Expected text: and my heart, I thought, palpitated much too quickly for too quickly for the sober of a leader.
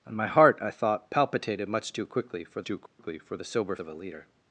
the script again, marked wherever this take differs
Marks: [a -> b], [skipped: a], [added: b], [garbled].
and my heart, I thought, palpitated much too quickly for too quickly for the sober of a leader.